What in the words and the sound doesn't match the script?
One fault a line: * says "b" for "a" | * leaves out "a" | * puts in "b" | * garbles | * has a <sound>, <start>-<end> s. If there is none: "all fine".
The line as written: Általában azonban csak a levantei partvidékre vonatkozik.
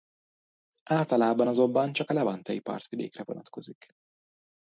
all fine